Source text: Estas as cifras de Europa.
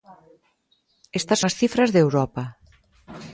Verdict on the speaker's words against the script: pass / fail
pass